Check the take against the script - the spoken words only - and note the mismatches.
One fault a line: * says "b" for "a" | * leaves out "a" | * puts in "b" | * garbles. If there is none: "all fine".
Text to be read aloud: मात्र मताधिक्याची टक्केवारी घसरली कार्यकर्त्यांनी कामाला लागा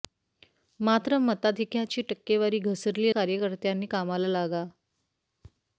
all fine